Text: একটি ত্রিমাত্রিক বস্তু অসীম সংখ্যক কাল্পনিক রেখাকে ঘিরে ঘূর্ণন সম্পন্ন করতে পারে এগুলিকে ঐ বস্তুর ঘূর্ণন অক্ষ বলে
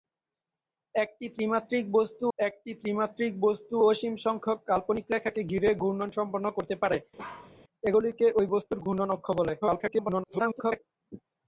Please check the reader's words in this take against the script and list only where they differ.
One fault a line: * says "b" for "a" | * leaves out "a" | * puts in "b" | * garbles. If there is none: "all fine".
* puts in "একটি ত্রিমাত্রিক বস্তু"
* garbles